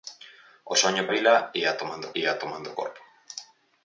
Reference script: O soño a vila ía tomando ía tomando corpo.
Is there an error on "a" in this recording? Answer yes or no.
no